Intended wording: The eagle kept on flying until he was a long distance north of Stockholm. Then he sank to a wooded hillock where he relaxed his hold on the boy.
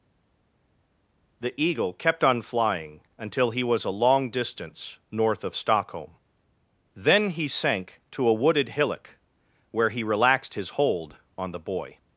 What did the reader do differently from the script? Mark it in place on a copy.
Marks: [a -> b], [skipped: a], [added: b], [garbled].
The eagle kept on flying until he was a long distance north of Stockholm. Then he sank to a wooded hillock where he relaxed his hold on the boy.